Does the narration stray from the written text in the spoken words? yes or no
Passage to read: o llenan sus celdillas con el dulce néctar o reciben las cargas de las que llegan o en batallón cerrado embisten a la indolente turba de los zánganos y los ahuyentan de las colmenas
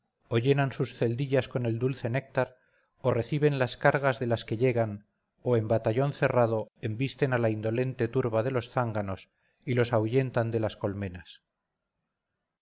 no